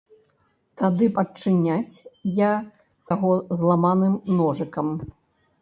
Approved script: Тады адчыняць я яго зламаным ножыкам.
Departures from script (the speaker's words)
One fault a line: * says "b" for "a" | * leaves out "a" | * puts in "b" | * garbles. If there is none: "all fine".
all fine